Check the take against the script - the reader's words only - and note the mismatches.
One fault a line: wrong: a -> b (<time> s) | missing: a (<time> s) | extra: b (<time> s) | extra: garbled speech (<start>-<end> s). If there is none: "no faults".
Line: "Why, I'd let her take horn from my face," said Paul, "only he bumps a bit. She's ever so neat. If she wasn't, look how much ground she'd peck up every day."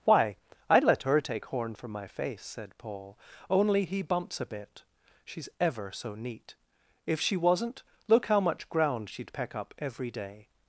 no faults